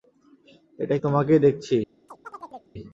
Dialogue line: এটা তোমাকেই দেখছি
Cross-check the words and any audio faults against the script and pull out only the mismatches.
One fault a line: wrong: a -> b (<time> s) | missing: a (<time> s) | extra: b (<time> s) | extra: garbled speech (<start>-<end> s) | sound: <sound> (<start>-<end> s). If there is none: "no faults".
sound: chirp (2.1-2.7 s)